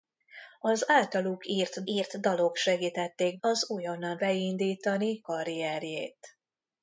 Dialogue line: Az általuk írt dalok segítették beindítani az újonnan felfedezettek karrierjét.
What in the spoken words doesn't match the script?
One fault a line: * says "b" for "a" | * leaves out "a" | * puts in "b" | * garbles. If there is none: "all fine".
* puts in "írt"
* leaves out "beindítani"
* says "beindítani" for "felfedezettek"